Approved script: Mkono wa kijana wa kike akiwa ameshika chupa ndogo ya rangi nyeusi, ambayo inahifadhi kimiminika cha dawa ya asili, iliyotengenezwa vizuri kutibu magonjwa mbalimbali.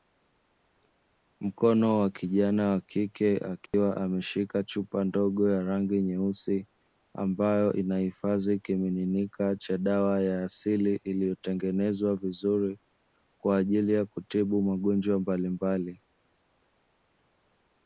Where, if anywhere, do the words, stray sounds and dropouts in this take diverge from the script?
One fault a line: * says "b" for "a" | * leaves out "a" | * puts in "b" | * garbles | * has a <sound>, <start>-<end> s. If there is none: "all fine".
* has a dropout, 3.7-3.7 s
* puts in "kwa ajili ya"